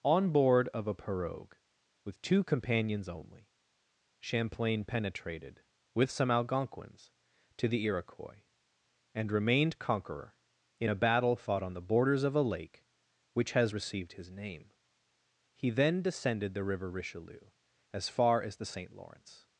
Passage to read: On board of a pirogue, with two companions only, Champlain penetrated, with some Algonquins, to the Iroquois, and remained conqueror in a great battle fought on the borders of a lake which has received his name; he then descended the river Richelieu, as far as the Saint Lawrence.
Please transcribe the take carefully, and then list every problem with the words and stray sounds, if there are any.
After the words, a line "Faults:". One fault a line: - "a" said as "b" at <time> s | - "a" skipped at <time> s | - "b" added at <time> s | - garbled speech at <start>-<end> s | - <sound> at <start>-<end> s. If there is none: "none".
On board of a pirogue, with two companions only, Champlain penetrated, with some Algonquins, to the Iroquois, and remained conqueror in a battle fought on the borders of a lake which has received his name; he then descended the river Richelieu, as far as the Saint Lawrence.
Faults:
- "great" skipped at 10.9 s